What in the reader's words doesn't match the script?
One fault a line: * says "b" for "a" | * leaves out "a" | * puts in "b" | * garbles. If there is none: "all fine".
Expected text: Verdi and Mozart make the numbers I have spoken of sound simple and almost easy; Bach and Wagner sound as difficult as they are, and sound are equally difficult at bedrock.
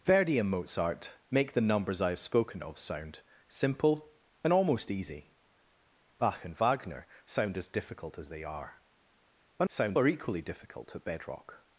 all fine